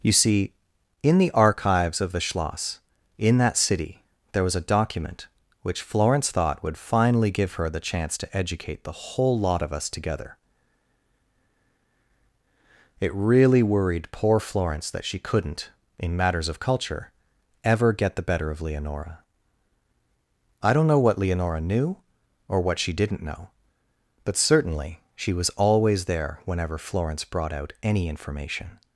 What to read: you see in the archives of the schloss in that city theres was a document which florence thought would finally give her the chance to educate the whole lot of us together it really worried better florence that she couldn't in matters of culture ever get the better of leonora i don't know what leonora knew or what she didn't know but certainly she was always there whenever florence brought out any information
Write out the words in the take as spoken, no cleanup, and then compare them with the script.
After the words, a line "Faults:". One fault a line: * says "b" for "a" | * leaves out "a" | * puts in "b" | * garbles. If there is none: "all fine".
you see in the archives of the schloss in that city there was a document which florence thought would finally give her the chance to educate the whole lot of us together it really worried poor florence that she couldn't in matters of culture ever get the better of leonora i don't know what leonora knew or what she didn't know but certainly she was always there whenever florence brought out any information
Faults:
* says "there" for "theres"
* says "poor" for "better"